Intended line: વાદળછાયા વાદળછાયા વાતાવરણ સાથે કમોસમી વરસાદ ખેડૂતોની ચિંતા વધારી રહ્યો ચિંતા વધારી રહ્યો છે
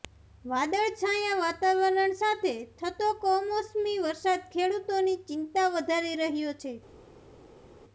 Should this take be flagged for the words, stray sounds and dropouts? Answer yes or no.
yes